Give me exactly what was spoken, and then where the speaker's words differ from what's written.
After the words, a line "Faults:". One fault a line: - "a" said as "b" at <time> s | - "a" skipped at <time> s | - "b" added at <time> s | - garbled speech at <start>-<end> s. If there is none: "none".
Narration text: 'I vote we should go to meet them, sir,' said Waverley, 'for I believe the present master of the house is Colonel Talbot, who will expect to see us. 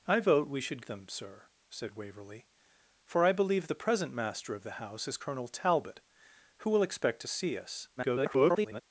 'I vote we should them, sir,' said Waverley, 'for I believe the present master of the house is Colonel Talbot, who will expect to see us. [garbled]
Faults:
- "go to meet" skipped at 0.8 s
- garbled speech at 8.0-8.8 s